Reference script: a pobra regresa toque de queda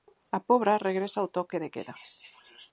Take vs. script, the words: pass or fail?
fail